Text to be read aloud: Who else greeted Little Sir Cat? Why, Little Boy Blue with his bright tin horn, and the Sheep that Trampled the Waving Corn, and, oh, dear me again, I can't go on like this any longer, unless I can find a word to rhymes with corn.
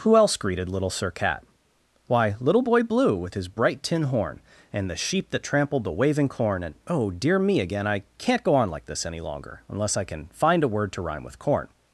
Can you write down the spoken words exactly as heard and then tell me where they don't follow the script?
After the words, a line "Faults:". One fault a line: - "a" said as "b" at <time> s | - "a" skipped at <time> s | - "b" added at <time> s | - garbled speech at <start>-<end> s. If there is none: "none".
Who else greeted Little Sir Cat? Why, Little Boy Blue with his bright tin horn, and the Sheep that Trampled the Waving Corn, and, oh, dear me again, I can't go on like this any longer, unless I can find a word to rhyme with corn.
Faults:
- "rhymes" said as "rhyme" at 11.0 s